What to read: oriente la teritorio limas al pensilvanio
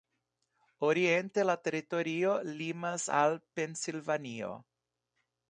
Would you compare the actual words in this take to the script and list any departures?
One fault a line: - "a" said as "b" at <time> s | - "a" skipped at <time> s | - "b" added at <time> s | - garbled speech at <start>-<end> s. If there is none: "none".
none